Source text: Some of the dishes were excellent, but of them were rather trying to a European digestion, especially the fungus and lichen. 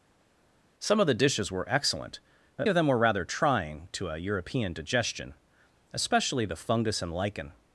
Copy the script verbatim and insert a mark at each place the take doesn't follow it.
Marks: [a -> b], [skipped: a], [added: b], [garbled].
Some of the dishes were excellent, but of them were rather trying to a European digestion, especially the fungus and lichen.